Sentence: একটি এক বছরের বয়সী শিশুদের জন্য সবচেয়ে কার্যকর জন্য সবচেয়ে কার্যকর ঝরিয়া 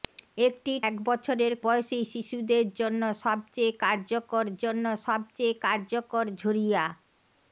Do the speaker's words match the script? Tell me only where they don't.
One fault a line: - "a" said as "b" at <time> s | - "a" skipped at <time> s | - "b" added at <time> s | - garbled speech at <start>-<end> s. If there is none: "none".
none